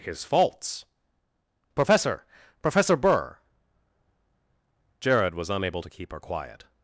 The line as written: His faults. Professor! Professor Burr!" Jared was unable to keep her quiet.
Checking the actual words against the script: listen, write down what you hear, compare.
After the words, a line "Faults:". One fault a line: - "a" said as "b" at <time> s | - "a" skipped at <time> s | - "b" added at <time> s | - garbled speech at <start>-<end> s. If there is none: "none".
His faults. Professor! Professor Burr!" Jared was unable to keep her quiet.
Faults:
none